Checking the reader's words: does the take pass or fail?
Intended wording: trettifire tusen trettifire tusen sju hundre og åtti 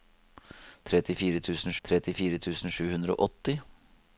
pass